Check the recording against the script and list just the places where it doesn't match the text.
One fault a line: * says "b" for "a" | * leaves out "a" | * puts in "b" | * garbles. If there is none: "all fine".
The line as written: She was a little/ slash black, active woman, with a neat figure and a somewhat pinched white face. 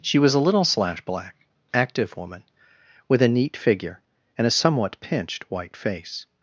all fine